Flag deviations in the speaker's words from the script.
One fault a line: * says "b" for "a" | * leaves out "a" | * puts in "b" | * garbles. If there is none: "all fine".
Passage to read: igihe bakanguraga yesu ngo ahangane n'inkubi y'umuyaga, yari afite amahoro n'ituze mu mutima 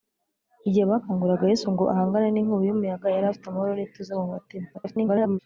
* garbles